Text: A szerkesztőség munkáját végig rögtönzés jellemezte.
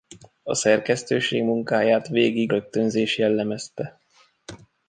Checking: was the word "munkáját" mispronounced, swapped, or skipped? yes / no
no